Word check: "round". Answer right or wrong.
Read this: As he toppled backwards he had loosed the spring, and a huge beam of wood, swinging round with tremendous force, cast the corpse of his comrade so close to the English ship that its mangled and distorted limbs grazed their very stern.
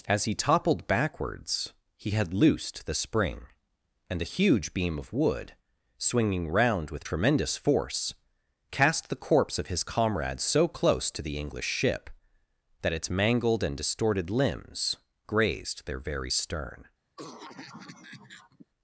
right